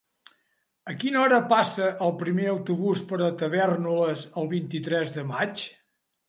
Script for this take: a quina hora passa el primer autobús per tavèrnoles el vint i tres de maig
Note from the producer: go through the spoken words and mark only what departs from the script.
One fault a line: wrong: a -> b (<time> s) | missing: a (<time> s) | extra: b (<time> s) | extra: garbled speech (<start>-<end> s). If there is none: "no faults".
no faults